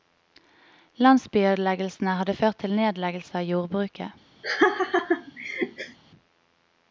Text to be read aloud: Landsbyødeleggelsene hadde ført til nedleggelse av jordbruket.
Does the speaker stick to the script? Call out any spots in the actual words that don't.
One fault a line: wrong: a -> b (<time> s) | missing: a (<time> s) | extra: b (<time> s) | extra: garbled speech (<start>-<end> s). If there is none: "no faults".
no faults